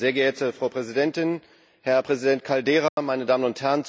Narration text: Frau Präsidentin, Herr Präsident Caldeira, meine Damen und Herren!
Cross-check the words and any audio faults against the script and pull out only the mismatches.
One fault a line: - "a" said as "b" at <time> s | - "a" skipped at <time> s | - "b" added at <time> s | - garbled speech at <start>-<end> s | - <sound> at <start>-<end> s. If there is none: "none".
- dropout at 2.9-3.0 s